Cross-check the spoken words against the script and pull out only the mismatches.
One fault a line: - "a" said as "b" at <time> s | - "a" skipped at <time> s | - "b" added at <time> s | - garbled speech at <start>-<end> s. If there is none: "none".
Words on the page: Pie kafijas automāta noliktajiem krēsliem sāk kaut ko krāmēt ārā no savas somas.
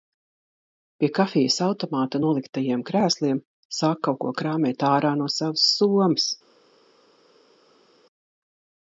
none